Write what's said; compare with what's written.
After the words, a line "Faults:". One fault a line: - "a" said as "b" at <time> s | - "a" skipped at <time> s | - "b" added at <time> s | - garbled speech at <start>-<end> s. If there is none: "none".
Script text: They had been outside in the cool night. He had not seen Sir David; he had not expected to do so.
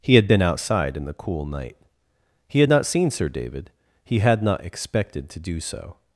He had been outside in the cool night. He had not seen Sir David; he had not expected to do so.
Faults:
- "They" said as "He" at 0.0 s